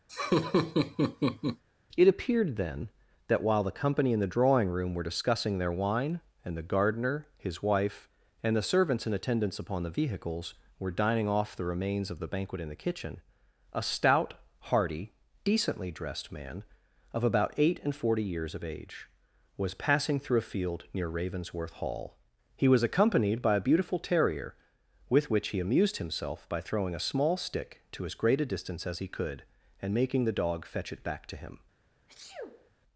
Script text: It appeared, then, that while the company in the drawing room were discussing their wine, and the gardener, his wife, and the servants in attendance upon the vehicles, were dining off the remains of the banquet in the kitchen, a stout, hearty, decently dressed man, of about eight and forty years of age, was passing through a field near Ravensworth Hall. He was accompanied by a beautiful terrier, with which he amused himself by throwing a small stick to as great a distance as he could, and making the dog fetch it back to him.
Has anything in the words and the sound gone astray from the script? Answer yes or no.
yes